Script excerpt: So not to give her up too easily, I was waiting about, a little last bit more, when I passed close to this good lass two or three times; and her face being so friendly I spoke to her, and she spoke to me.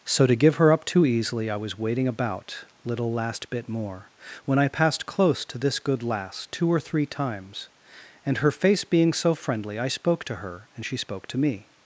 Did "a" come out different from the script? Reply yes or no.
yes